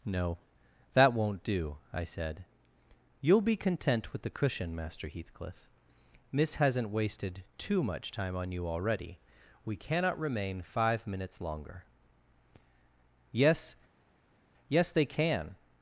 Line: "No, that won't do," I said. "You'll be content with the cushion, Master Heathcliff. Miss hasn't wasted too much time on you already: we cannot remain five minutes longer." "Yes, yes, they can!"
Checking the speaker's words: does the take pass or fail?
pass